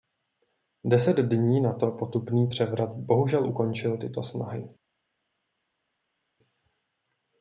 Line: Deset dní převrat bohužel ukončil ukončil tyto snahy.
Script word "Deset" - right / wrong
right